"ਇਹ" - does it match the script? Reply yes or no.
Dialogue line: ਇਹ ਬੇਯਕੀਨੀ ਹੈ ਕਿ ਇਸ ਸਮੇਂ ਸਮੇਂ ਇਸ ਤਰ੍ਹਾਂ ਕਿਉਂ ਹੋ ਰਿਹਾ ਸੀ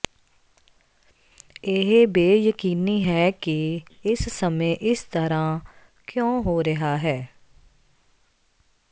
yes